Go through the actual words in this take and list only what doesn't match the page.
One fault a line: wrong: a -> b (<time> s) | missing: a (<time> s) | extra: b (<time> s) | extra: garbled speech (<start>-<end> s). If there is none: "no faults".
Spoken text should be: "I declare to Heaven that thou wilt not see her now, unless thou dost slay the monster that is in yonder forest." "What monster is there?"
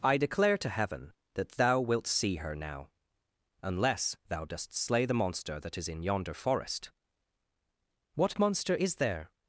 missing: not (2.1 s)